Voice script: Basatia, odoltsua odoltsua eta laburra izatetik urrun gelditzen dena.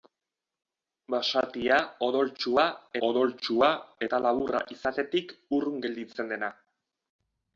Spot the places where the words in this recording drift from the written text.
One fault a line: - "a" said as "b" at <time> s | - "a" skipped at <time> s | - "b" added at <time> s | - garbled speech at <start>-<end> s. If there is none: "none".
none